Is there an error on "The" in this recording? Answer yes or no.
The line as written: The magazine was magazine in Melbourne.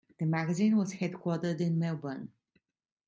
no